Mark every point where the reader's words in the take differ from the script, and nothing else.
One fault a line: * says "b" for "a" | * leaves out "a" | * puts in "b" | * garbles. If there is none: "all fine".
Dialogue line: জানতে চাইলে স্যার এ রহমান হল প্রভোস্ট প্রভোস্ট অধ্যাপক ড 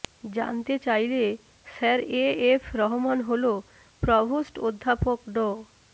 * puts in "এফ"
* leaves out "প্রভোস্ট"